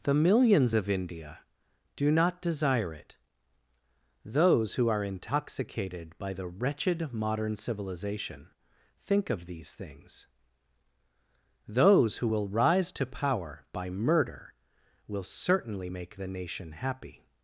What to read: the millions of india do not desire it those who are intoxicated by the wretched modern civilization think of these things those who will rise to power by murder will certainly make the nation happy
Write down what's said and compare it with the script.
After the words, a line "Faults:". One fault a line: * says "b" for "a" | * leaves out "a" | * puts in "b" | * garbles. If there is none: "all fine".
the millions of india do not desire it those who are intoxicated by the wretched modern civilization think of these things those who will rise to power by murder will certainly make the nation happy
Faults:
all fine